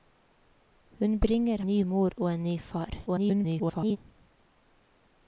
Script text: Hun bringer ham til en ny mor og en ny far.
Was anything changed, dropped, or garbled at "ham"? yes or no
yes